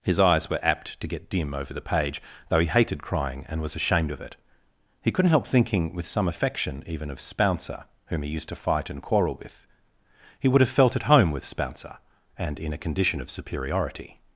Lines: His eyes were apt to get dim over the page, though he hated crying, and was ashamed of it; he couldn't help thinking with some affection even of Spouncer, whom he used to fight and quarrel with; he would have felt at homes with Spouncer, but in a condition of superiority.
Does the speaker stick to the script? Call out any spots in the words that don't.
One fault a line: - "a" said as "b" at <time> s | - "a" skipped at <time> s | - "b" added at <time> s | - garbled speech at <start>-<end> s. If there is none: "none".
- "homes" said as "home" at 11.0 s
- "but" said as "and" at 12.3 s